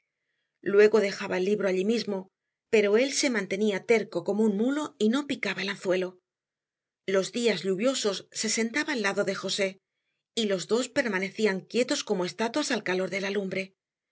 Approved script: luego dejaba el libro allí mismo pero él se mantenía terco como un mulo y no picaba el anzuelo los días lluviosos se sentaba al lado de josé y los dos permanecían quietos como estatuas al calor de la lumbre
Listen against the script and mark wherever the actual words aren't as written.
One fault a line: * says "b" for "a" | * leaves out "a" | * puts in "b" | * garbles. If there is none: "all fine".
all fine